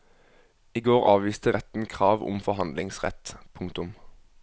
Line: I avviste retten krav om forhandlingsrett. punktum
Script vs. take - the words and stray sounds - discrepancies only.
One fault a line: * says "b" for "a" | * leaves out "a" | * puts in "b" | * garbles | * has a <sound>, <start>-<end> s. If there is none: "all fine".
* puts in "går"